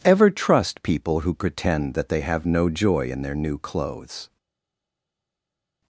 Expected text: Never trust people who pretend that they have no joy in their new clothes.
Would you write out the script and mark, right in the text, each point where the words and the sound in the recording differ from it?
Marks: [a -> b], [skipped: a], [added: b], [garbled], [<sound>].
[Never -> Ever] trust people who pretend that they have no joy in their new clothes.